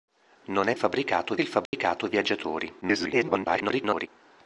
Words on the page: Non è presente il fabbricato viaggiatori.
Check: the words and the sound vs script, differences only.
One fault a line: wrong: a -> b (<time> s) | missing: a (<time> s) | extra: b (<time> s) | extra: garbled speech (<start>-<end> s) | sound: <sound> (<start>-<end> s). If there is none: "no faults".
wrong: presente -> fabbricato (0.7 s)
sound: dropout (1.7-1.7 s)
extra: garbled speech (2.8-4.1 s)